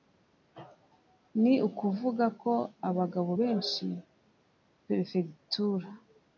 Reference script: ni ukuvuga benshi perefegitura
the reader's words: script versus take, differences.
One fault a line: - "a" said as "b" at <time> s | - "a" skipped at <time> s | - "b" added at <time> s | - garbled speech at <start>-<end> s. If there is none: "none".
- "ko abagabo" added at 2.4 s